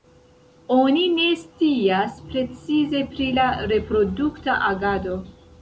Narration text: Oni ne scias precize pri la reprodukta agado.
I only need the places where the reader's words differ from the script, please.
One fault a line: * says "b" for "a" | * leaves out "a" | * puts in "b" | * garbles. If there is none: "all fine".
all fine